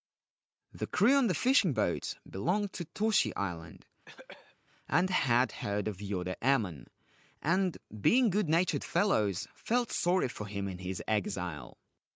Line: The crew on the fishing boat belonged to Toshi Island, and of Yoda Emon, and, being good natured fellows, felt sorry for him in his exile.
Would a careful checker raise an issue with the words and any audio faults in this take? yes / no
yes